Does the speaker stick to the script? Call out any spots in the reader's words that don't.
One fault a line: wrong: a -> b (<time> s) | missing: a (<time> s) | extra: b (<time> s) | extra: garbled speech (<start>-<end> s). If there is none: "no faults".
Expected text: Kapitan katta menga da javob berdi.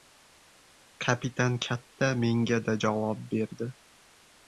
no faults